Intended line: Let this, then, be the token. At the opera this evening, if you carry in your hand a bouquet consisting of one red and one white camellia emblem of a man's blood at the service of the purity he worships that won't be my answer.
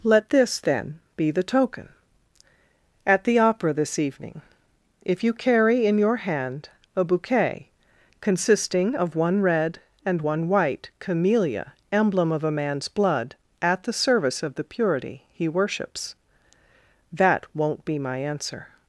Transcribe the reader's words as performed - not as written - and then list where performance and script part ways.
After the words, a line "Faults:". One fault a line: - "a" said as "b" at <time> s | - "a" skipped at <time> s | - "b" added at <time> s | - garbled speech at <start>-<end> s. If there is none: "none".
Let this, then, be the token. At the opera this evening, if you carry in your hand a bouquet consisting of one red and one white camellia emblem of a man's blood at the service of the purity he worships that won't be my answer.
Faults:
none